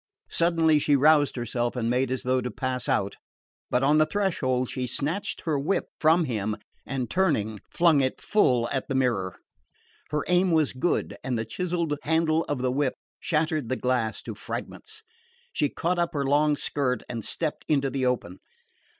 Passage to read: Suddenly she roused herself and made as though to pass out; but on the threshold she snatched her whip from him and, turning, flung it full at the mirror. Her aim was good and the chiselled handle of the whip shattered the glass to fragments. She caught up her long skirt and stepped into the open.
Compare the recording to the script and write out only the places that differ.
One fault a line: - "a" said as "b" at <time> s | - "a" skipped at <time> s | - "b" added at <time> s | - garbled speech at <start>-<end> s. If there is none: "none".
none